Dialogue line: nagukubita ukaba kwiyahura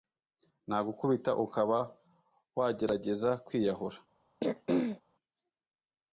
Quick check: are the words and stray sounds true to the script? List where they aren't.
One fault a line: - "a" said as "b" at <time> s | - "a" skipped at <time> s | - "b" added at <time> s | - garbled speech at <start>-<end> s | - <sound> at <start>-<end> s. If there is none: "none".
- "wagerageza" added at 2.6 s
- throat clearing at 4.4-5.0 s